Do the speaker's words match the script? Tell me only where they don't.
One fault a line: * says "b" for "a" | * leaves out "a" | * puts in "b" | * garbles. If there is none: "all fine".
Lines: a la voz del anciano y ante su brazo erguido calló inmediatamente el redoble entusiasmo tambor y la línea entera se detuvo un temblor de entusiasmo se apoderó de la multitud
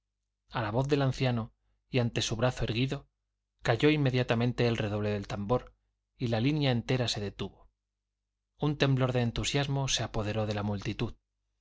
* says "del" for "entusiasmo"